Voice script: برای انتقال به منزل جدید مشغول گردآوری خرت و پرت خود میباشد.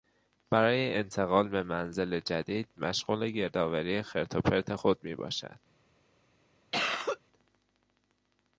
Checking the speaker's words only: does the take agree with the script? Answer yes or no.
yes